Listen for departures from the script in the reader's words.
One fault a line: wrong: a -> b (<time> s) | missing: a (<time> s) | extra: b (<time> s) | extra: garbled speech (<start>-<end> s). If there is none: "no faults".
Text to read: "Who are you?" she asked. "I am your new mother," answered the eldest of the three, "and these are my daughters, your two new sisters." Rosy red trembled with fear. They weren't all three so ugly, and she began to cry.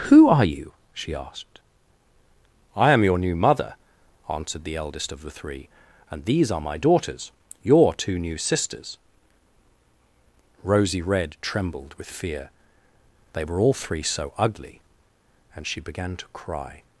wrong: weren't -> were (13.4 s)